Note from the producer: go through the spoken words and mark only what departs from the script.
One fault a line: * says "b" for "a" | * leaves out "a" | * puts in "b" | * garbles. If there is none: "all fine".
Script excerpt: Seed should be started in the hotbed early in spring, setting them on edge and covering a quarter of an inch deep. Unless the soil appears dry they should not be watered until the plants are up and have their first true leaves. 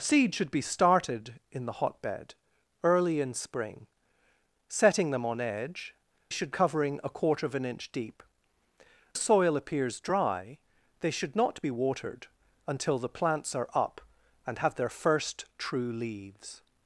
* says "should" for "and"
* leaves out "Unless the"